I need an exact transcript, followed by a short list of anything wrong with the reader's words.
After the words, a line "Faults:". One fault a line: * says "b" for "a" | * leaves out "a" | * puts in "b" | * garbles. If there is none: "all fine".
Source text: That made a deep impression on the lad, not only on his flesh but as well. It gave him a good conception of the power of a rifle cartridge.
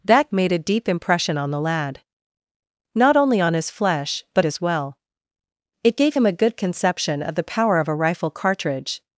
That made a deep impression on the lad, not only on his flesh but as well. It gave him a good conception of the power of a rifle cartridge.
Faults:
all fine